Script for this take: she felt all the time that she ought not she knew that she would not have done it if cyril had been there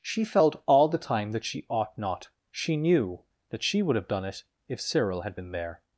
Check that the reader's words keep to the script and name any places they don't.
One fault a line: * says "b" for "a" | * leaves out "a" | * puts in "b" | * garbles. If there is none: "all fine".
* leaves out "not"